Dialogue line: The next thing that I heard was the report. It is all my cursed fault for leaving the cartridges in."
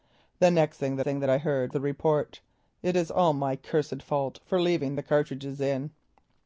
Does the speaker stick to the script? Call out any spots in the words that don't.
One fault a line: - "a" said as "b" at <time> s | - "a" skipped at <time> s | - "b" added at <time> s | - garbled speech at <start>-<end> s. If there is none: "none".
- "thing that" added at 1.0 s
- "was" skipped at 1.7 s